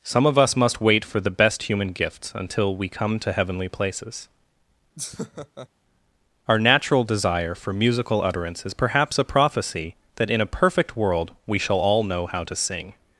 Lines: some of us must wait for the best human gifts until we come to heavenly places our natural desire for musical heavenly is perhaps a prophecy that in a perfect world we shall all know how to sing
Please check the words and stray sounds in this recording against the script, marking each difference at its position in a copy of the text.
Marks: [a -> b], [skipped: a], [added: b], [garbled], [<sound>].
some of us must wait for the best human gifts until we come to heavenly places [laugh] our natural desire for musical [heavenly -> utterance] is perhaps a prophecy that in a perfect world we shall all know how to sing